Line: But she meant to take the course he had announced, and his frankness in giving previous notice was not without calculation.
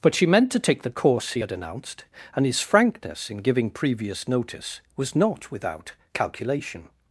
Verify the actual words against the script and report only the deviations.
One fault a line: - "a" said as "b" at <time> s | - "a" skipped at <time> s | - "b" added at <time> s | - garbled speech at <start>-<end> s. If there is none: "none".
none